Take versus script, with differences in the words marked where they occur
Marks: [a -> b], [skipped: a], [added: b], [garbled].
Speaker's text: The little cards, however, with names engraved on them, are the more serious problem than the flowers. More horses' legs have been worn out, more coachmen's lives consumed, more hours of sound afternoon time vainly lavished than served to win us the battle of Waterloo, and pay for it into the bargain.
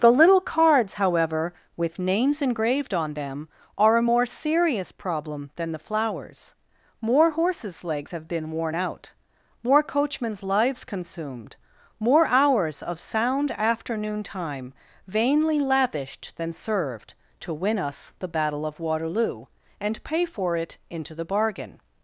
The little cards, however, with names engraved on them, are [the -> a] more serious problem than the flowers. More horses' legs have been worn out, more coachmen's lives consumed, more hours of sound afternoon time vainly lavished than served to win us the battle of Waterloo, and pay for it into the bargain.